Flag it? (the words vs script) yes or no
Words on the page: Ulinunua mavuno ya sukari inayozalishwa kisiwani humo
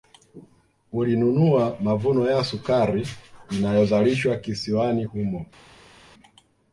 no